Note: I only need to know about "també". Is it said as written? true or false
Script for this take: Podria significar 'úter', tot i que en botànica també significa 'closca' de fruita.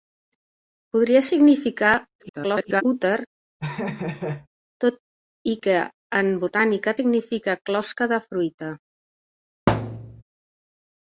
false